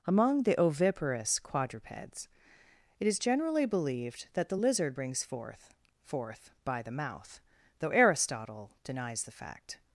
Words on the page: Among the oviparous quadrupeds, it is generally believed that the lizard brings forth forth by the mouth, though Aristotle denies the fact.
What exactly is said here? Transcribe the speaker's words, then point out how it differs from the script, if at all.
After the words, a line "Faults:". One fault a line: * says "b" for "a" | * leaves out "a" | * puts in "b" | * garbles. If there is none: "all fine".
Among the oviparous quadrupeds, it is generally believed that the lizard brings forth forth by the mouth, though Aristotle denies the fact.
Faults:
all fine